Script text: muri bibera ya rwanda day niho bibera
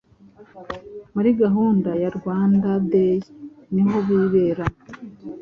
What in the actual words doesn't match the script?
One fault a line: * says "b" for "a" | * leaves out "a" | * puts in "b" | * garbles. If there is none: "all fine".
* says "gahunda" for "bibera"